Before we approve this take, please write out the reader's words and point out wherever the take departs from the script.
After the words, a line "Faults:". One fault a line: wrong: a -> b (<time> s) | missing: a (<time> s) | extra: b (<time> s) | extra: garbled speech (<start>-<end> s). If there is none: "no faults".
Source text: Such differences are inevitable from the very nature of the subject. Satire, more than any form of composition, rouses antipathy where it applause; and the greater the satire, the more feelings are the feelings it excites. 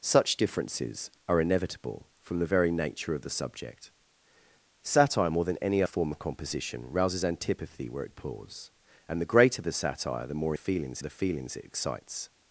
Such differences are inevitable from the very nature of the subject. Satire, more than any form of composition, rouses antipathy where it applause; and the greater the satire, the more feelings are the feelings it excites.
Faults:
no faults